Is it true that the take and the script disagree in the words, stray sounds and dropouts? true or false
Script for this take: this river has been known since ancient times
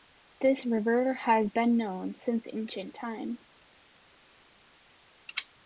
false